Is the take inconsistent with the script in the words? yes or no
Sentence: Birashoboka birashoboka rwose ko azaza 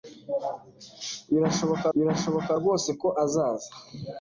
no